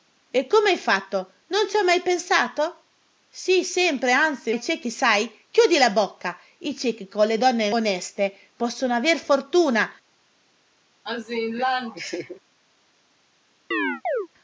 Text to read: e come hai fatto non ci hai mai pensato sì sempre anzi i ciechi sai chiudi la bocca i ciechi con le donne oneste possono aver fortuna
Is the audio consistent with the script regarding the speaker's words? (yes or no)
yes